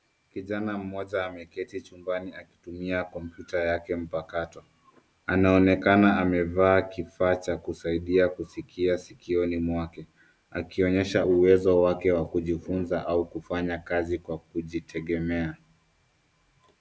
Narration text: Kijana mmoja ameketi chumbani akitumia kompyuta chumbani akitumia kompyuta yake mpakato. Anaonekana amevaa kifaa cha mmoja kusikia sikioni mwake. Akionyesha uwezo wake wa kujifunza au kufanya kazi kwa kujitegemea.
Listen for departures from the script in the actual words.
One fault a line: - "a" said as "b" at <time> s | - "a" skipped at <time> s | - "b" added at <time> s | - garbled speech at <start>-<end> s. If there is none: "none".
- "chumbani akitumia kompyuta" skipped at 3.6 s
- "mmoja" said as "kusaidia" at 7.6 s